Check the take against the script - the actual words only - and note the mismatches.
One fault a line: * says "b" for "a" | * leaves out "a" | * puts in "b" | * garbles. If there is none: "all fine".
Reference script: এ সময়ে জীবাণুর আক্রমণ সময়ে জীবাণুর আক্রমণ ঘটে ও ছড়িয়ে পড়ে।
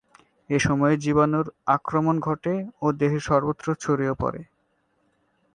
* says "ঘটে ও দেহের সর্বত্র" for "সময়ে জীবাণুর আক্রমণ ঘটে ও"